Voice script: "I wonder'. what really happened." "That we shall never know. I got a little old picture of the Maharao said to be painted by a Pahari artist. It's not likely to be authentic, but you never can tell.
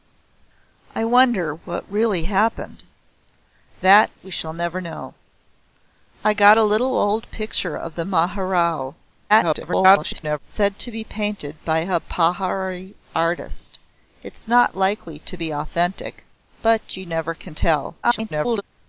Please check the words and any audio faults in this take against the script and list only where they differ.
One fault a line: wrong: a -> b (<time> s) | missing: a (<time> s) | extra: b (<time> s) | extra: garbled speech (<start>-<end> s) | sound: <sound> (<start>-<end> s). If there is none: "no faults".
extra: garbled speech (9.3-10.4 s)
extra: garbled speech (18.0-18.6 s)